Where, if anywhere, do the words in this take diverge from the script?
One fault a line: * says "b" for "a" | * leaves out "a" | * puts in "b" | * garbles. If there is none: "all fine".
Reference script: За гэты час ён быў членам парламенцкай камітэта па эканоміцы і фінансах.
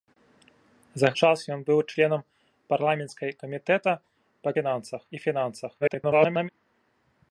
* leaves out "гэты"
* says "фінансах" for "эканоміцы"
* garbles